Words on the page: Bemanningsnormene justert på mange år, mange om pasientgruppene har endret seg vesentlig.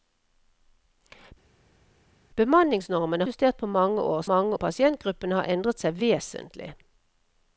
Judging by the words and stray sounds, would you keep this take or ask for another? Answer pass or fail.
pass